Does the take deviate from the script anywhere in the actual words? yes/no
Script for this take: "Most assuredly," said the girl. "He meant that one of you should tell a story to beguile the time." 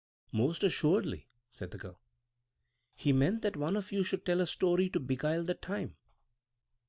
no